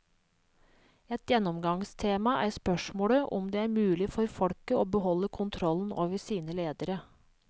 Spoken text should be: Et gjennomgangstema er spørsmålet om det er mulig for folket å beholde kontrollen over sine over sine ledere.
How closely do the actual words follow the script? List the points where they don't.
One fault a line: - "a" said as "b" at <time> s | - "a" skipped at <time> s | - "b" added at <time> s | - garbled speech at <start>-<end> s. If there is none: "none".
- "over sine" skipped at 6.6 s